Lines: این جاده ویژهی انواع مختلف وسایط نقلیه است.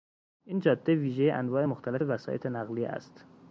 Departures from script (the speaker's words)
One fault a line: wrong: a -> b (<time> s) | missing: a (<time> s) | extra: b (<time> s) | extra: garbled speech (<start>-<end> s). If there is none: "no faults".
no faults